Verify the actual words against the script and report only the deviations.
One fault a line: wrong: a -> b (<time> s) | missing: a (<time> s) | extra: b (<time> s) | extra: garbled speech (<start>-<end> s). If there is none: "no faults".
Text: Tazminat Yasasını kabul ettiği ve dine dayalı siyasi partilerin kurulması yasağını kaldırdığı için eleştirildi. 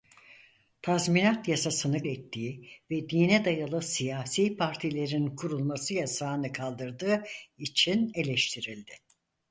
missing: kabul (2.0 s)